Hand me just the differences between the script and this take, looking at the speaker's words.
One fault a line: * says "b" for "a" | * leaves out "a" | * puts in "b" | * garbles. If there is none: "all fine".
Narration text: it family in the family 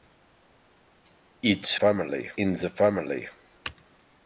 all fine